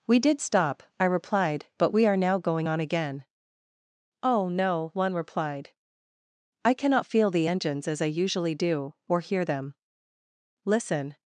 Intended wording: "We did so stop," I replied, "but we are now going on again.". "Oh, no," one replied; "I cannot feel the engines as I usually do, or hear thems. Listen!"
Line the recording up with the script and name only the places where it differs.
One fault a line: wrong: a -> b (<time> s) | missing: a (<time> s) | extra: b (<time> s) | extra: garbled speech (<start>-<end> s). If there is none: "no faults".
missing: so (0.4 s)
wrong: thems -> them (9.4 s)